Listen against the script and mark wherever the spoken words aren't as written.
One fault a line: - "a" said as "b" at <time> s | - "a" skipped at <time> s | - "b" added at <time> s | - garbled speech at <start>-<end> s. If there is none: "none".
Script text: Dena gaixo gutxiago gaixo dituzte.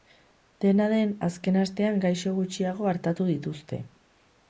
- "den azken astean" added at 0.9 s
- "gaixo" said as "artatu" at 3.0 s